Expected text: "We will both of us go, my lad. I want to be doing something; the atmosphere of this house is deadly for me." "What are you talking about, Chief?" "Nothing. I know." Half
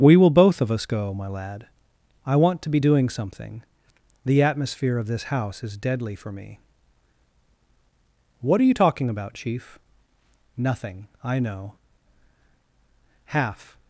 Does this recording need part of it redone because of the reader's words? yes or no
no